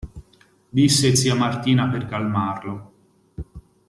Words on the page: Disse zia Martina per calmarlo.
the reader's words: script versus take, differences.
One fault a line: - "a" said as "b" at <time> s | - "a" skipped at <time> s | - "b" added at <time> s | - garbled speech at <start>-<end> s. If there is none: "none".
none